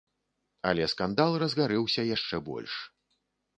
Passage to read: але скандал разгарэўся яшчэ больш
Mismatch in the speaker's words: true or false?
false